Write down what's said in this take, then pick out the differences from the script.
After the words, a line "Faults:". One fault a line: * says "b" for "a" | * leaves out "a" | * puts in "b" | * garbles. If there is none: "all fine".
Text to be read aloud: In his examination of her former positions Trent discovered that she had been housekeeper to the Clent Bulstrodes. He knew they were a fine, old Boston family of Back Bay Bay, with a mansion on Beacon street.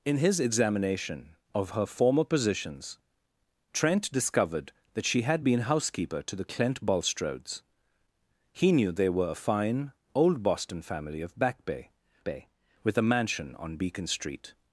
In his examination of her former positions Trent discovered that she had been housekeeper to the Clent Bulstrodes. He knew they were a fine, old Boston family of Back Bay Bay, with a mansion on Beacon street.
Faults:
all fine